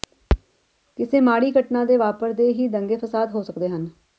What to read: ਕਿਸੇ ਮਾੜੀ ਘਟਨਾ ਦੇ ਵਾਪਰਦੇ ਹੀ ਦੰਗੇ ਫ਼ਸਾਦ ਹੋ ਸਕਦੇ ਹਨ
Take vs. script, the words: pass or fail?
pass